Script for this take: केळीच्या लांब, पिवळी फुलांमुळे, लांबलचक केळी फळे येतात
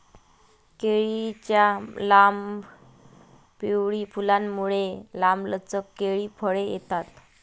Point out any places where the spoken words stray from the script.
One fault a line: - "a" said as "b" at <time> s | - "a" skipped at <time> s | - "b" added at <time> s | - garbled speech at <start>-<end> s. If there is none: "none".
none